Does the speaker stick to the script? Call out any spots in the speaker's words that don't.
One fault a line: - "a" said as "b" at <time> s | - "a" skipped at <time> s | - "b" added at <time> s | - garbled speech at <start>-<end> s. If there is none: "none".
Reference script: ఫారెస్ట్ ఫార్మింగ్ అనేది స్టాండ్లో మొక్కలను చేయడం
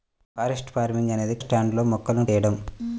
none